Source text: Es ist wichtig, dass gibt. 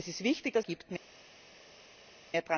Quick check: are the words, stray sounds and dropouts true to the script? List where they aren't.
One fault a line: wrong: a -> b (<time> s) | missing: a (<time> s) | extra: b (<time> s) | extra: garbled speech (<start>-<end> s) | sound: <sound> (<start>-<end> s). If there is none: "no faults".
no faults